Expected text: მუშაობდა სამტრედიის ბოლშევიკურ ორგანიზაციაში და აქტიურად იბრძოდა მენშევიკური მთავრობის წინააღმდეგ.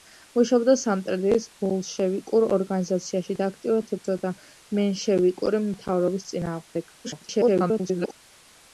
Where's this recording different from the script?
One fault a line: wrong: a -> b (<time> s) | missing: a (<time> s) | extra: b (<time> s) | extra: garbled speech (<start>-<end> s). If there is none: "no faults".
extra: garbled speech (7.0-8.1 s)